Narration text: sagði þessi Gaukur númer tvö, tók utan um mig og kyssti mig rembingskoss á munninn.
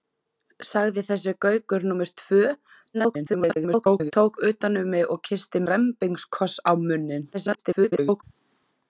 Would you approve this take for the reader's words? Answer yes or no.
no